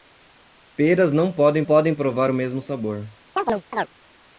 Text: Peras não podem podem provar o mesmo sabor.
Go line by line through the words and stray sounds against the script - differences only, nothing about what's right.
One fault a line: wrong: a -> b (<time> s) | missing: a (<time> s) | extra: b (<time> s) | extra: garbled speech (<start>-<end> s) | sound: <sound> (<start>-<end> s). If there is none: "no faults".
sound: chirp (3.4-3.9 s)